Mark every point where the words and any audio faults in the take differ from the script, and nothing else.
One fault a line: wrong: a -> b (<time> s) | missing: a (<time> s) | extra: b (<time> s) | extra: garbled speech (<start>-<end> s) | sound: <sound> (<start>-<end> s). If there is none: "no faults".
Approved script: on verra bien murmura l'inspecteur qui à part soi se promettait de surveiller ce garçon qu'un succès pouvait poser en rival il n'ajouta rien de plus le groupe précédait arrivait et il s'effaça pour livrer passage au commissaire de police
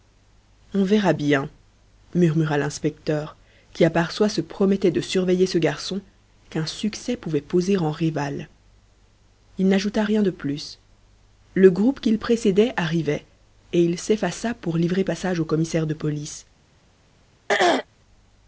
extra: qu'il (12.0 s)
sound: throat clearing (17.5-17.9 s)